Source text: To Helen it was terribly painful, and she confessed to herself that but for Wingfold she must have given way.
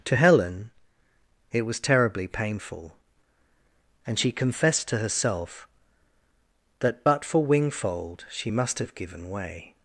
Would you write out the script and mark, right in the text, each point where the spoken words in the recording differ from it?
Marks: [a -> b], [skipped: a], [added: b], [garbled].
To Helen it was terribly painful, and she confessed to herself that but for Wingfold she must have given way.